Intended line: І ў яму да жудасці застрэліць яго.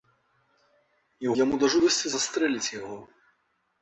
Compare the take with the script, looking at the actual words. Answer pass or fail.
pass